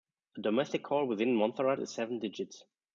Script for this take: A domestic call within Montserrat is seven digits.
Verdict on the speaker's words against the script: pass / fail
pass